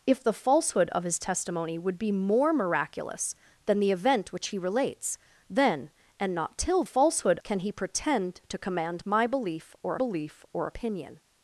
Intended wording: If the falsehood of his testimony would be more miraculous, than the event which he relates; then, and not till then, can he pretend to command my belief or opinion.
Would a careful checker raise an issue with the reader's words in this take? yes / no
yes